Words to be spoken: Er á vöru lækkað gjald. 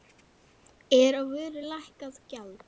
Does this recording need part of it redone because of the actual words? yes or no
no